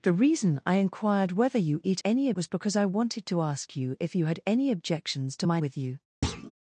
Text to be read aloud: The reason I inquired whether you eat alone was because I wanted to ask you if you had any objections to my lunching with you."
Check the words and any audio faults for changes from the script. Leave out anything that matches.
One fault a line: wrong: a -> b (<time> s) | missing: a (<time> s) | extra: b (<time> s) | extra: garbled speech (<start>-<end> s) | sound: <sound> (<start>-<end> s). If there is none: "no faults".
wrong: alone -> any (2.0 s)
missing: lunching (5.6 s)
sound: thud (6.2-6.5 s)